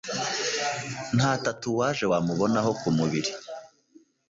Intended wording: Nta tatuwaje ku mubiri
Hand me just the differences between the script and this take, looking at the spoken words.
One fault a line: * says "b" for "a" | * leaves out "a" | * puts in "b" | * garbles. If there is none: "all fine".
* puts in "wamubonaho"